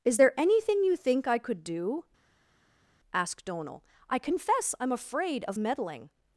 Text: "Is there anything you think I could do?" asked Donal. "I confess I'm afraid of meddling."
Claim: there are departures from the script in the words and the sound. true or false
false